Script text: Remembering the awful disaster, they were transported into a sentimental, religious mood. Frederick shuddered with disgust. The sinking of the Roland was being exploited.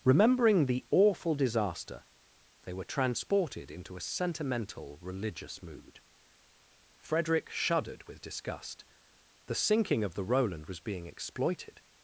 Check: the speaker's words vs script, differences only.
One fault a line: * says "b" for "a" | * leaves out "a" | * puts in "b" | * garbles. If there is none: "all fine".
all fine